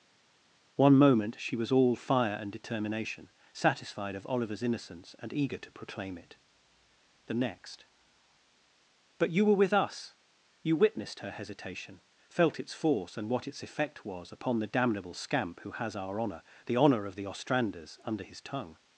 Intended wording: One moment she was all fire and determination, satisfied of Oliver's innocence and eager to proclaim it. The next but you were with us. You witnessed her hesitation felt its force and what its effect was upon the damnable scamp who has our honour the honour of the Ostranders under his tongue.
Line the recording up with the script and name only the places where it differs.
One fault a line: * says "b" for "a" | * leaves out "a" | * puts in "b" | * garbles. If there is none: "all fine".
all fine